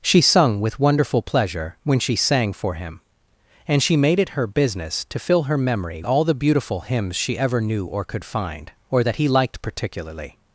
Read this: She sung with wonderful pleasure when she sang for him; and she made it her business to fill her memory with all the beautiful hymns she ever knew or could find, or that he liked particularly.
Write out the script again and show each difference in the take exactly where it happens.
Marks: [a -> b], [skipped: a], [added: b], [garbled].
She sung with wonderful pleasure when she sang for him; and she made it her business to fill her memory [skipped: with] all the beautiful hymns she ever knew or could find, or that he liked particularly.